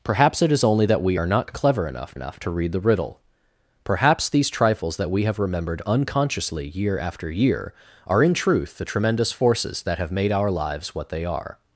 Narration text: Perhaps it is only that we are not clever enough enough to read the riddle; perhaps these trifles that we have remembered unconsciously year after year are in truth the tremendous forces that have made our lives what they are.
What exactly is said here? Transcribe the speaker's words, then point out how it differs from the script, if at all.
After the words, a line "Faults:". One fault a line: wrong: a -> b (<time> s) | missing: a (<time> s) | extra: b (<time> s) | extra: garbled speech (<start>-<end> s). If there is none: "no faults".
Perhaps it is only that we are not clever enough enough to read the riddle; perhaps these trifles that we have remembered unconsciously year after year are in truth the tremendous forces that have made our lives what they are.
Faults:
no faults